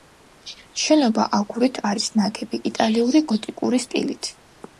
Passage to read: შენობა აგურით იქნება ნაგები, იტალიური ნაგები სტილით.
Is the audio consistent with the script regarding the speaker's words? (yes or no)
no